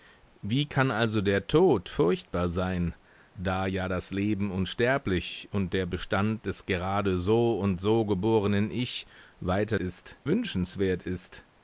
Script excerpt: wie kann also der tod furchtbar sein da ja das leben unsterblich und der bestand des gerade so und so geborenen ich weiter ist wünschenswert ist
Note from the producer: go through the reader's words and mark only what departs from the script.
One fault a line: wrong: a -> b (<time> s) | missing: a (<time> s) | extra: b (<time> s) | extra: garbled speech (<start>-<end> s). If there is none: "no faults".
no faults